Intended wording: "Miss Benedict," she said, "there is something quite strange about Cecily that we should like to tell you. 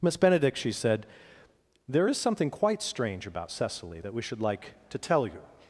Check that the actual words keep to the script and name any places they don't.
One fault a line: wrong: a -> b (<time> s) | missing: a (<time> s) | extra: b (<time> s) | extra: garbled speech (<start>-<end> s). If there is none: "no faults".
no faults